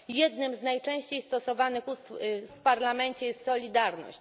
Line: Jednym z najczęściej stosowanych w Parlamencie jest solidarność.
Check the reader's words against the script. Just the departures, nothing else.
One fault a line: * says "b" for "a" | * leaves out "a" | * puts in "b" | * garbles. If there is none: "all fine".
all fine